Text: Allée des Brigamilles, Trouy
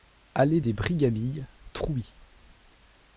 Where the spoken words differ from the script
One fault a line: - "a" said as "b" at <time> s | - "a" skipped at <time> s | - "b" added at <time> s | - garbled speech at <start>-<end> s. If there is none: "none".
none